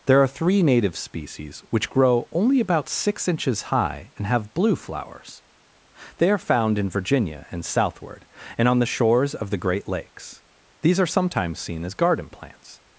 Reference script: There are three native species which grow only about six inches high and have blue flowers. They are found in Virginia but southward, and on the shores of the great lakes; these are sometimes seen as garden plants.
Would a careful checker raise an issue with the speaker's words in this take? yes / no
yes